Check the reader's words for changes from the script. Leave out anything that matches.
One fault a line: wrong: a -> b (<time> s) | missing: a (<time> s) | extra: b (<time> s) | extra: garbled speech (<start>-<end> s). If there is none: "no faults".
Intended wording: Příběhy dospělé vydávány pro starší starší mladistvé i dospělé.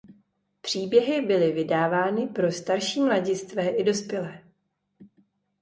wrong: dospělé -> byly (1.2 s)
missing: starší (3.0 s)